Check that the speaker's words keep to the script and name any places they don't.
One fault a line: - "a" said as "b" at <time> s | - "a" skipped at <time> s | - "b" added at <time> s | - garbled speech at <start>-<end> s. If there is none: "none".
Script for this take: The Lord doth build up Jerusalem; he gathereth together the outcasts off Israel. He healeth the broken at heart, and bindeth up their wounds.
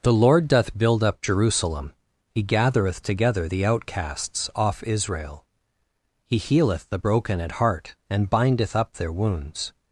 none